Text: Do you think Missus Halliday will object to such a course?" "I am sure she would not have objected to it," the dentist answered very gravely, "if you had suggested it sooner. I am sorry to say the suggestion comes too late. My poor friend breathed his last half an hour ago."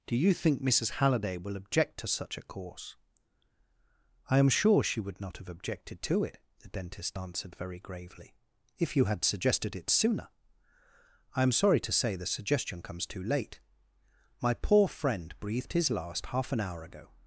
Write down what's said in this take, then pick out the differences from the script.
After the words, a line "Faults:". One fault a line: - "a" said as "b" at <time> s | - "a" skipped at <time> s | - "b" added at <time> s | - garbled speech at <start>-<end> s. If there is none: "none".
Do you think Missus Halliday will object to such a course?" "I am sure she would not have objected to it," the dentist answered very gravely, "if you had suggested it sooner. I am sorry to say the suggestion comes too late. My poor friend breathed his last half an hour ago."
Faults:
none